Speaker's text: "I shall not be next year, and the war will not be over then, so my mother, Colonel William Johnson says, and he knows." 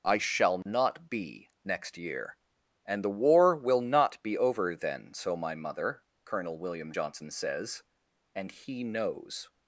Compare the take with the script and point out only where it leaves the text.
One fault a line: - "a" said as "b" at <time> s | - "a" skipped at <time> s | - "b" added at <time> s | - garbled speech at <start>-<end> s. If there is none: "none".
none